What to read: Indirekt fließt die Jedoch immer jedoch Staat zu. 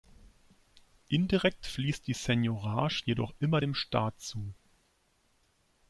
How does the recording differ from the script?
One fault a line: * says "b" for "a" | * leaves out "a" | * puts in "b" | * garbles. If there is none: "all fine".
* puts in "Seigniorage"
* says "dem" for "jedoch"